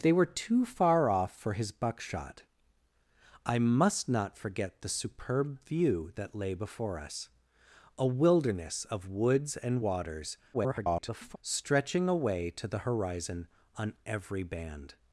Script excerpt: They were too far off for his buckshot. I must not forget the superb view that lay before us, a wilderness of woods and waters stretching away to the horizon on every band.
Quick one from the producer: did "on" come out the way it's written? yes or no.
yes